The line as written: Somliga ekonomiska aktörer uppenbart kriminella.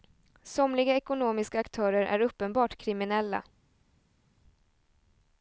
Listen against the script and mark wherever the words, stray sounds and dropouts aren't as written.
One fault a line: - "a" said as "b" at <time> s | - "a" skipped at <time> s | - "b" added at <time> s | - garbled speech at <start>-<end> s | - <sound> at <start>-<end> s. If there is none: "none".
- "är" added at 2.0 s